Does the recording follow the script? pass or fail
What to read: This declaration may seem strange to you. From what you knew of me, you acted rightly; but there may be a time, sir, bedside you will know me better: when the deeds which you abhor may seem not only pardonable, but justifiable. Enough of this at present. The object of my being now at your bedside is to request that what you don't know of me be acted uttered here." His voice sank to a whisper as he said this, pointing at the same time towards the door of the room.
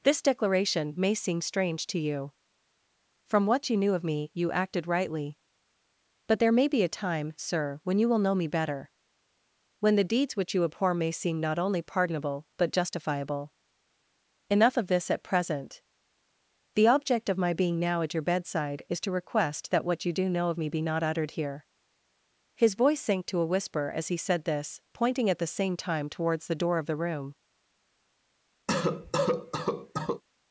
fail